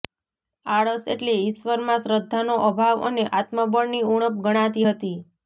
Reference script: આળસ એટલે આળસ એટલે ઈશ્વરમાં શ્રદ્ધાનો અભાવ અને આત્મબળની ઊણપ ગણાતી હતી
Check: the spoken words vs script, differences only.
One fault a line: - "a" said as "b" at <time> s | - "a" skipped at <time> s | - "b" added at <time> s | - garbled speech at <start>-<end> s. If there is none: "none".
- "આળસ એટલે" skipped at 1.4 s